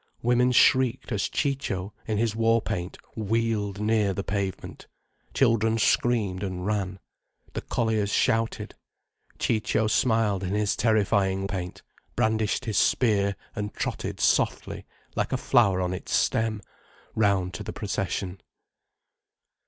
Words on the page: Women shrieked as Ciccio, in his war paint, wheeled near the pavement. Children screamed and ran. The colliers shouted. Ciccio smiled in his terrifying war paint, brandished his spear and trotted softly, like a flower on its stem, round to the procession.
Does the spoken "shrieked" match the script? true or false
true